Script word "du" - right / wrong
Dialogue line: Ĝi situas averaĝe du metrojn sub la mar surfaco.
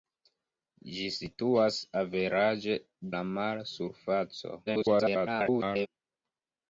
wrong